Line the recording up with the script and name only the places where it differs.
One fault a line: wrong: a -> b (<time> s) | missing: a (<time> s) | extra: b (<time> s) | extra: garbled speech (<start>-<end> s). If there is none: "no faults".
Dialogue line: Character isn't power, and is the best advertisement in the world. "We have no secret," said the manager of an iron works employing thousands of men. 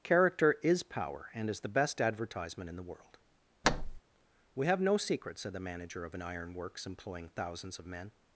wrong: isn't -> is (0.6 s)